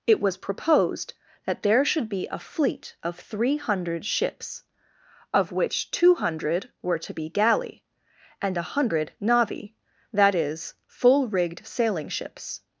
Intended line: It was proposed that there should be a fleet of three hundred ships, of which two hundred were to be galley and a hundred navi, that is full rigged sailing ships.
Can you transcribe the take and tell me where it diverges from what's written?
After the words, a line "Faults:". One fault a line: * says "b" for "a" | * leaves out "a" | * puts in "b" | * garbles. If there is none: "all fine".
It was proposed that there should be a fleet of three hundred ships, of which two hundred were to be galley and a hundred navi, that is full rigged sailing ships.
Faults:
all fine